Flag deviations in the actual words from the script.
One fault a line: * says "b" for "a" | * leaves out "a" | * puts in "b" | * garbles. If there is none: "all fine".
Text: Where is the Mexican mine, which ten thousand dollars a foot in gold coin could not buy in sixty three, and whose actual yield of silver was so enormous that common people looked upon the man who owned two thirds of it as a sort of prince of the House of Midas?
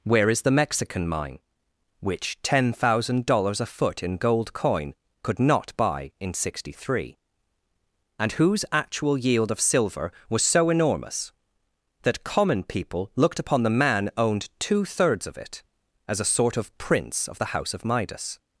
* leaves out "who"